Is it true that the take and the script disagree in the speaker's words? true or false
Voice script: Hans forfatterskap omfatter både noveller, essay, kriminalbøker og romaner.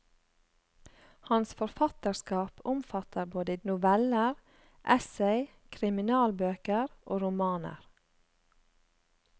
false